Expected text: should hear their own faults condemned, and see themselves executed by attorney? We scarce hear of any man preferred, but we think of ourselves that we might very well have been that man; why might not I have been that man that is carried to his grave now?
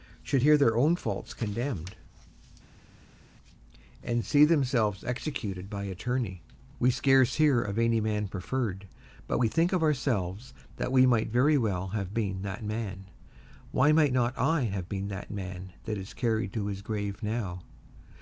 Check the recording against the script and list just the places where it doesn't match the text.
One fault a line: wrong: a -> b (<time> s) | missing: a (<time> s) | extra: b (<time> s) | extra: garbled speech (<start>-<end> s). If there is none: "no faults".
no faults